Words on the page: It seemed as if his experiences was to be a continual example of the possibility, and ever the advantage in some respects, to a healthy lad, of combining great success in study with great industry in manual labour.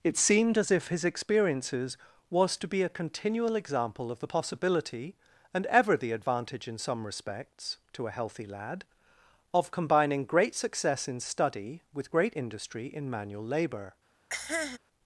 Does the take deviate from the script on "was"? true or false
false